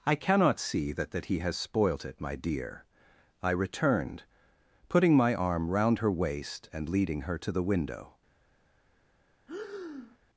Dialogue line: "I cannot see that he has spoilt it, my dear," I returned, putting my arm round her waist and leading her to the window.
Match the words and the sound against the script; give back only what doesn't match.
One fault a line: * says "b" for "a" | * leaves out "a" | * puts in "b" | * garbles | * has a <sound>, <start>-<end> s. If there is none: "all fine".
* puts in "that"
* has a breath, 9.5-10.2 s